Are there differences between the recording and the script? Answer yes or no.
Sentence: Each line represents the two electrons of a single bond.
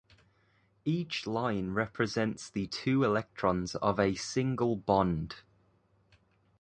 no